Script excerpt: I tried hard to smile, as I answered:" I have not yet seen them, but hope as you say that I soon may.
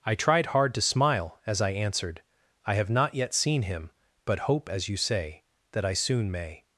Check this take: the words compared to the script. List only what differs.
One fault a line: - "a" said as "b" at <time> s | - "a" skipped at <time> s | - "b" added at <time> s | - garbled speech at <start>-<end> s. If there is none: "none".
- "them" said as "him" at 3.6 s